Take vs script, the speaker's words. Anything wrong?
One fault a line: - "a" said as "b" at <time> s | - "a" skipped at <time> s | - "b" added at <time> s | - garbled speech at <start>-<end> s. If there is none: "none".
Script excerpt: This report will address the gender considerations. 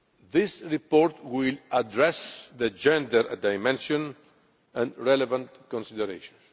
- "dimension and relevant" added at 3.4 s